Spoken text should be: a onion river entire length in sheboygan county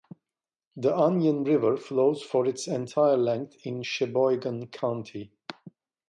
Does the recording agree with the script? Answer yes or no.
no